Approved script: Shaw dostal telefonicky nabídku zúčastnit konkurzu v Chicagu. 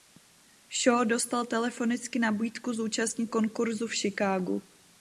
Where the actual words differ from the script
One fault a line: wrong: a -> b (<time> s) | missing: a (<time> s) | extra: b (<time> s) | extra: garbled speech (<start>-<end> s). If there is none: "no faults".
no faults